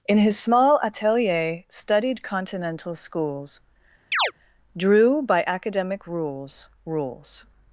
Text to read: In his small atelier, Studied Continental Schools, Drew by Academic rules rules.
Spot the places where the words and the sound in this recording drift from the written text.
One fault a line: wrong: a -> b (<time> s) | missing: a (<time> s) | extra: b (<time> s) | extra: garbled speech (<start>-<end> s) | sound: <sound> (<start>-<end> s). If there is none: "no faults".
sound: chirp (4.1-4.3 s)